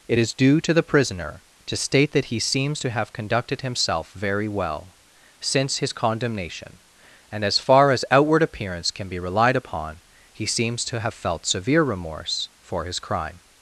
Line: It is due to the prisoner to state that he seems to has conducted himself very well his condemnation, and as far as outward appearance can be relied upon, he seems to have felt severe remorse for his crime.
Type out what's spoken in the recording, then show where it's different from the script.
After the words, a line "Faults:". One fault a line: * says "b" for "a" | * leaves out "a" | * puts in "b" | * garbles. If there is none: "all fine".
It is due to the prisoner to state that he seems to have conducted himself very well since his condemnation, and as far as outward appearance can be relied upon, he seems to have felt severe remorse for his crime.
Faults:
* says "have" for "has"
* puts in "since"